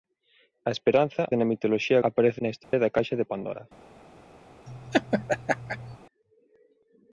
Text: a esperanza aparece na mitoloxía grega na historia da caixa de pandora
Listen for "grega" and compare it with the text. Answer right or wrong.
wrong